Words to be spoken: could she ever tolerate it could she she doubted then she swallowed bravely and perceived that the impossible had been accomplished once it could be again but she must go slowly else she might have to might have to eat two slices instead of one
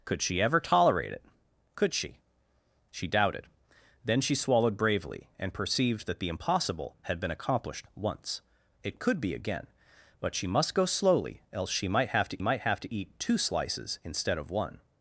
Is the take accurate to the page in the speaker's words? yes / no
yes